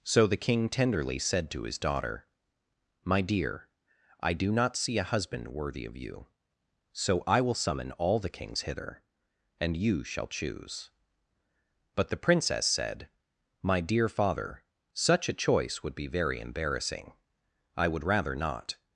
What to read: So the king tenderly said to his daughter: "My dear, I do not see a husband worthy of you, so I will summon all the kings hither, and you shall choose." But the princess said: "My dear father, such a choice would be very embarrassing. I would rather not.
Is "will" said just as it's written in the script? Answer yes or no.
yes